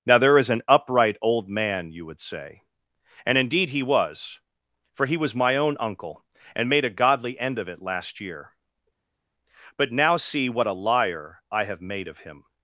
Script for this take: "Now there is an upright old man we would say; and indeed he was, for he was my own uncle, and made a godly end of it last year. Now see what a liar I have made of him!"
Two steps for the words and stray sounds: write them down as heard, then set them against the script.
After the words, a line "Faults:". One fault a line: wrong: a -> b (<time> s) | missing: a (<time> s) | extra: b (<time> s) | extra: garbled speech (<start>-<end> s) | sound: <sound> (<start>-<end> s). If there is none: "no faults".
"Now there is an upright old man you would say; and indeed he was, for he was my own uncle, and made a godly end of it last year. But now see what a liar I have made of him!"
Faults:
wrong: we -> you (1.9 s)
extra: But (9.7 s)